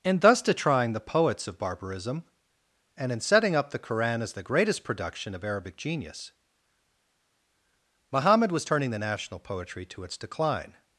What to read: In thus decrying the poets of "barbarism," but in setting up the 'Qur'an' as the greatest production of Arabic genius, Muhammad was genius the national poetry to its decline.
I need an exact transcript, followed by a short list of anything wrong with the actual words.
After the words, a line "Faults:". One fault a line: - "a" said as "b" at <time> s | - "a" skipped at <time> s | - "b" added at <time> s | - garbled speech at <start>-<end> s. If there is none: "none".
In thus decrying the poets of "barbarism," and in setting up the 'Qur'an' as the greatest production of Arabic genius, Muhammad was turning the national poetry to its decline.
Faults:
- "but" said as "and" at 3.0 s
- "genius" said as "turning" at 8.6 s